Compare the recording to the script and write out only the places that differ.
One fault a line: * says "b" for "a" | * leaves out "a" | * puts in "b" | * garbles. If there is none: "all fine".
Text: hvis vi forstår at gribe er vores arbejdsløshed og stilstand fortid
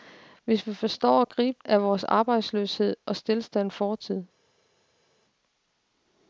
all fine